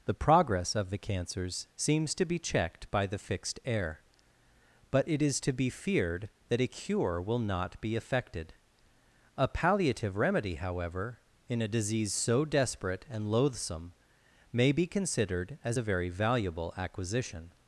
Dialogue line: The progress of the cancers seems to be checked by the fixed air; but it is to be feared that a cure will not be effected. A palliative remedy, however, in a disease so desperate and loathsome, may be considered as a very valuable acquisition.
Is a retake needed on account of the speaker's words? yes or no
no